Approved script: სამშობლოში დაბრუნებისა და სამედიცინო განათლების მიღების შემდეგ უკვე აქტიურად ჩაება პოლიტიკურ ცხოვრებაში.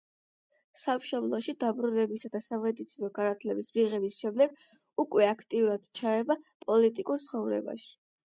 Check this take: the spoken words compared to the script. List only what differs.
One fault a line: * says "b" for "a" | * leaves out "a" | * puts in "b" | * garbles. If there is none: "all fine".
all fine